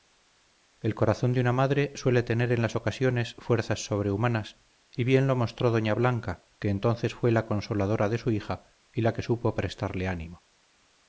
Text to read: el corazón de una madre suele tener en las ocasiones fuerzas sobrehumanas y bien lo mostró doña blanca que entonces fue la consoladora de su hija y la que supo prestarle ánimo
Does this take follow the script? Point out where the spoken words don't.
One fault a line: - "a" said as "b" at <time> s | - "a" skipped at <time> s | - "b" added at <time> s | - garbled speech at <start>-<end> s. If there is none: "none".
none